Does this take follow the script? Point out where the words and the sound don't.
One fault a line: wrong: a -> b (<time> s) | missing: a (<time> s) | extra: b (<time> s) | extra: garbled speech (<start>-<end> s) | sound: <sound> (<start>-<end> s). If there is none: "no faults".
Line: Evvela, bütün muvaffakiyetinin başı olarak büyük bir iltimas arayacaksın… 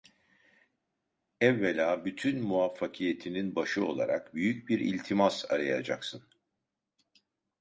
no faults